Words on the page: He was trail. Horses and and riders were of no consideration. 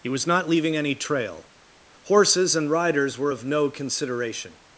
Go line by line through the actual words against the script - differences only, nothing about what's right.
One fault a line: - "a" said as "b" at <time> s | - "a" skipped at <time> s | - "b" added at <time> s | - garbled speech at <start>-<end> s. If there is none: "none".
- "not leaving any" added at 0.3 s
- "and" skipped at 2.7 s